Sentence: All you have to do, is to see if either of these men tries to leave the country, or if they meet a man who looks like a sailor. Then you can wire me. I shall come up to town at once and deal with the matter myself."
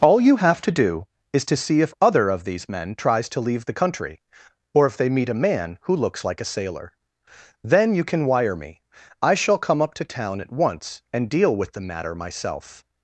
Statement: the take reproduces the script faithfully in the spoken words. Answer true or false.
false